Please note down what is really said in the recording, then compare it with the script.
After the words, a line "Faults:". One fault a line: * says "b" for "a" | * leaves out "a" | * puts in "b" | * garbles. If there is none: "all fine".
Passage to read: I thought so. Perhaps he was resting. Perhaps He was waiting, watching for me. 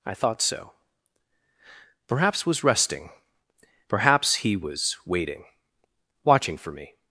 I thought so. Perhaps was resting. Perhaps He was waiting, watching for me.
Faults:
* leaves out "he"